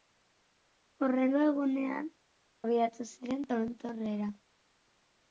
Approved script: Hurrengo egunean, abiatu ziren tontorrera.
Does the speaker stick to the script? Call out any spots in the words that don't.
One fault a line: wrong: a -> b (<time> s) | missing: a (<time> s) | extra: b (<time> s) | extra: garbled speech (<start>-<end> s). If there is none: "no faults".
no faults